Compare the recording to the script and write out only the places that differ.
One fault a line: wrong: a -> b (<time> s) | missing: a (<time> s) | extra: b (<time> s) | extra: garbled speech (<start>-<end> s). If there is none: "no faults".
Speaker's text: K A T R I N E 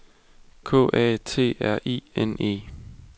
no faults